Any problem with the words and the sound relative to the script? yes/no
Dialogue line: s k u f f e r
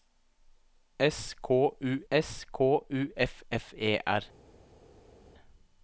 yes